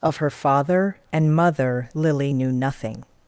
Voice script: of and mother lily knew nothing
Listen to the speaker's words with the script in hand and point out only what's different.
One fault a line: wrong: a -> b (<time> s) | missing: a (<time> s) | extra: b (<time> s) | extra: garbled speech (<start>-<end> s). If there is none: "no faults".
extra: her father (0.2 s)